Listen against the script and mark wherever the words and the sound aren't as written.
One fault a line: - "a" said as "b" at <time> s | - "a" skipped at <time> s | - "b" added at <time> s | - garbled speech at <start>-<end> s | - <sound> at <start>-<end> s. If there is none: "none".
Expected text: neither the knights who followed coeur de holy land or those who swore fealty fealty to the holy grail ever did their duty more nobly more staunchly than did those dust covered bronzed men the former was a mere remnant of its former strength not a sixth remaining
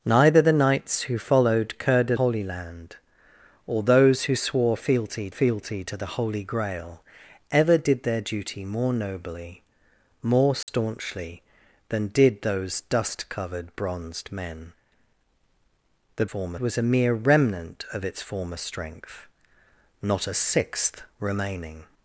- dropout at 10.6-10.7 s